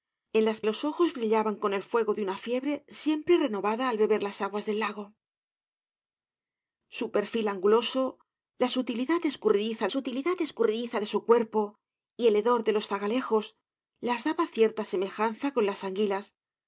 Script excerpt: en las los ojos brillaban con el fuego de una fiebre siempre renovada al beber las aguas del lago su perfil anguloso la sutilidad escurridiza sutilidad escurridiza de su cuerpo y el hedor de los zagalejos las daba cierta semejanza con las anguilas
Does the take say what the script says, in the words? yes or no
yes